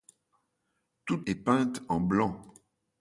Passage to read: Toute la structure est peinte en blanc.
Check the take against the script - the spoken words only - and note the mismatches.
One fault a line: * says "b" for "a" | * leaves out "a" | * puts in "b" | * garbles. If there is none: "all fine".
* leaves out "la structure"